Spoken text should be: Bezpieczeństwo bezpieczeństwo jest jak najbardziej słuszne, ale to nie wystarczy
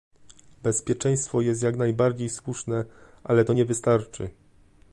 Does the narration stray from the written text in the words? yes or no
yes